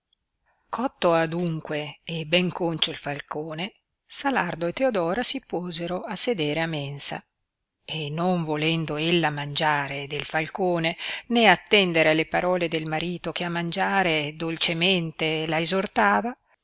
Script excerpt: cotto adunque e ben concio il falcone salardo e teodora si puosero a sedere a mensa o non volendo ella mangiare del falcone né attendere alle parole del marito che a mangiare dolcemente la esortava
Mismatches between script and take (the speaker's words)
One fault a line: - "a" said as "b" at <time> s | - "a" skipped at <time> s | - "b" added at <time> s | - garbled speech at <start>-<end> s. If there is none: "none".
- "o" said as "e" at 7.8 s